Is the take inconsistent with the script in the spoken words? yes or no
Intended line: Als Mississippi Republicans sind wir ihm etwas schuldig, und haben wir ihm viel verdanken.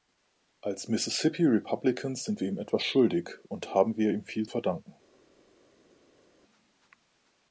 no